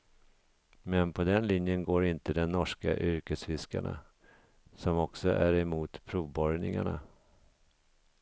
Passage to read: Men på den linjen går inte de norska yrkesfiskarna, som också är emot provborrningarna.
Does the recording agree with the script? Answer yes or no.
yes